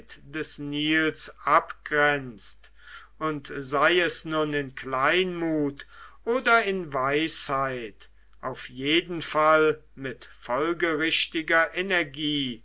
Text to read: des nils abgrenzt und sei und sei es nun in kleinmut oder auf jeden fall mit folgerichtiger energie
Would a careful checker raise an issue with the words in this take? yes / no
yes